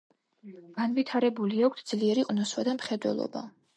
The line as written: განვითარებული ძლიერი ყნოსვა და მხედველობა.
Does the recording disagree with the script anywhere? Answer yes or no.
yes